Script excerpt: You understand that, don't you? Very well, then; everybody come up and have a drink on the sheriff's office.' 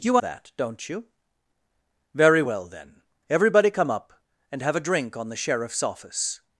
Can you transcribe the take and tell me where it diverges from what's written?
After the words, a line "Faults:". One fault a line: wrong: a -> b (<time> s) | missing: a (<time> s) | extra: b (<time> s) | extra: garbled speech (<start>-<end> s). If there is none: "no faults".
You that, don't you? Very well, then; everybody come up and have a drink on the sheriff's office.'
Faults:
missing: understand (0.2 s)